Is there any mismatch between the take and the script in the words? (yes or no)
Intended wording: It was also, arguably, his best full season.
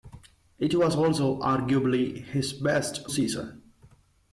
yes